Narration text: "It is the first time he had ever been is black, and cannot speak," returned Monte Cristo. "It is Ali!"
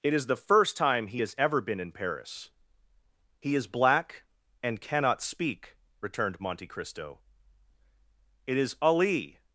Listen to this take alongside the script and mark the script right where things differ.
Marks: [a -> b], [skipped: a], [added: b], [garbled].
"It is the first time he [had -> has] ever been [added: in Paris He] is black, and cannot speak," returned Monte Cristo. "It is Ali!"